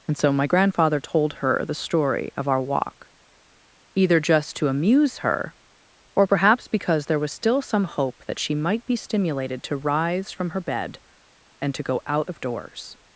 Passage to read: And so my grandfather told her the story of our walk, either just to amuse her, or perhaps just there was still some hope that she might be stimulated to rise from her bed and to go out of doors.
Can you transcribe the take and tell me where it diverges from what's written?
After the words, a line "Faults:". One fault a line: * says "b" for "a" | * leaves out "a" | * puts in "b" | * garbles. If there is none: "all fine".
And so my grandfather told her the story of our walk, either just to amuse her, or perhaps because there was still some hope that she might be stimulated to rise from her bed and to go out of doors.
Faults:
* says "because" for "just"